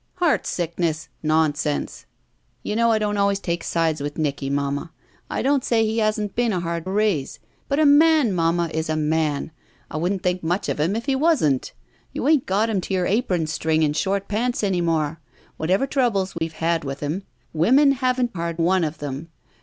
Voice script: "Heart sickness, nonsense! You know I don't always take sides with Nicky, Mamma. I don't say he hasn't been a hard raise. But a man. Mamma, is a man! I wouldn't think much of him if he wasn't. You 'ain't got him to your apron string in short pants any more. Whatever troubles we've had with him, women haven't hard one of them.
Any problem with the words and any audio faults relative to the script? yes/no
yes